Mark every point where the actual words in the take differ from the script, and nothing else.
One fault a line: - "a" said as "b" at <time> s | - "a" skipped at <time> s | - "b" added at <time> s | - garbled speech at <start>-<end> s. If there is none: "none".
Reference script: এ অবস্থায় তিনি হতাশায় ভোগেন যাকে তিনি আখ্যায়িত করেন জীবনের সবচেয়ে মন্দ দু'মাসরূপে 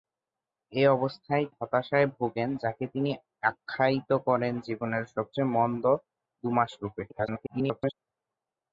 - "তিনি" skipped at 1.4 s
- garbled speech at 7.1-7.9 s